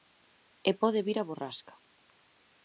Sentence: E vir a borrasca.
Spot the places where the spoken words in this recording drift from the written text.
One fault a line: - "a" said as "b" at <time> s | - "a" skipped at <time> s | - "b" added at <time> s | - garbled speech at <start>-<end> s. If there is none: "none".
- "pode" added at 0.8 s